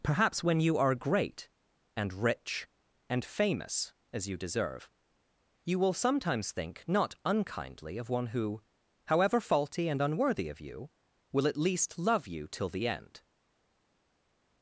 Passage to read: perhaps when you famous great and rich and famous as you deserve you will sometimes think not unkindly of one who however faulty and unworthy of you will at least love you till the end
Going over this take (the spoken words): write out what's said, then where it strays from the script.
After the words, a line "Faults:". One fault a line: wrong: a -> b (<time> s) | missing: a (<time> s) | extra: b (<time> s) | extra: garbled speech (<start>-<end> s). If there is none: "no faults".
perhaps when you are great and rich and famous as you deserve you will sometimes think not unkindly of one who however faulty and unworthy of you will at least love you till the end
Faults:
wrong: famous -> are (0.8 s)